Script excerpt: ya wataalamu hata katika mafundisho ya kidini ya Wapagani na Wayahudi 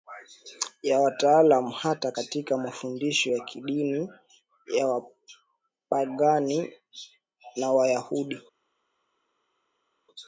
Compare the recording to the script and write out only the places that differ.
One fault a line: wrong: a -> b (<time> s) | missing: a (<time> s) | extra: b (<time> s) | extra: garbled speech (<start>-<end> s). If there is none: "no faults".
no faults